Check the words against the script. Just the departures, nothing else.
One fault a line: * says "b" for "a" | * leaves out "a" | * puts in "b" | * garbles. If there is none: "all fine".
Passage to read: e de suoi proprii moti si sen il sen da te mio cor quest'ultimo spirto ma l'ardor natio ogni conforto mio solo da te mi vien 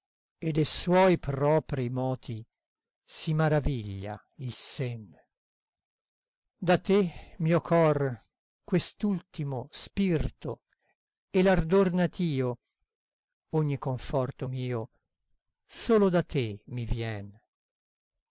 * says "maraviglia" for "sen"
* says "e" for "ma"